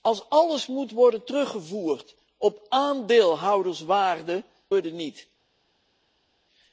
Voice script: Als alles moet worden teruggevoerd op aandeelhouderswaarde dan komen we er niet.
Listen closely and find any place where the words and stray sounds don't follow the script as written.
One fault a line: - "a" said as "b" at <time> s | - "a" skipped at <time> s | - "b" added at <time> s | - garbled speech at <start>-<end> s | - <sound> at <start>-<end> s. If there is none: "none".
- "dan komen" skipped at 4.4 s